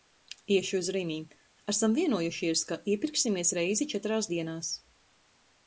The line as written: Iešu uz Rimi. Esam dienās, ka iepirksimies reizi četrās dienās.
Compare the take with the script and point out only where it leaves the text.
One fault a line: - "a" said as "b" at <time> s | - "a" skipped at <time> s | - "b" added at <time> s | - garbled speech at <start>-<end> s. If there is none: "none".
- "dienās" said as "vienojušies" at 2.0 s